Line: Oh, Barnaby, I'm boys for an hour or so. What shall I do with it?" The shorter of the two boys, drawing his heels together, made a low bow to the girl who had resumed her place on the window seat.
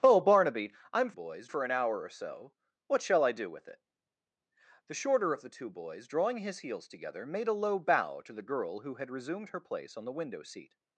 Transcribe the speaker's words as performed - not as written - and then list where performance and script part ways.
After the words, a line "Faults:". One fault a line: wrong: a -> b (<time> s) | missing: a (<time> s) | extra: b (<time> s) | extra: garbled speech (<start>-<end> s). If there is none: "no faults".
Oh, Barnaby, I'm boys for an hour or so. What shall I do with it?" The shorter of the two boys, drawing his heels together, made a low bow to the girl who had resumed her place on the window seat.
Faults:
no faults